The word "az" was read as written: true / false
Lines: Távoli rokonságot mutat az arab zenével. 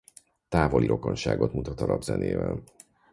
false